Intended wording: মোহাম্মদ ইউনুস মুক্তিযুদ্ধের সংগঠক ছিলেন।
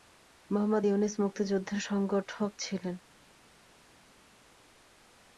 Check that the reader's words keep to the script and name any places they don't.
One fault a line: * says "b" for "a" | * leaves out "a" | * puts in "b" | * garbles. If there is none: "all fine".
all fine